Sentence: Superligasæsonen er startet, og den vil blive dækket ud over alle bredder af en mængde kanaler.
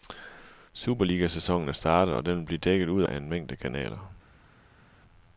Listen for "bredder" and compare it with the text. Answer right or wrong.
wrong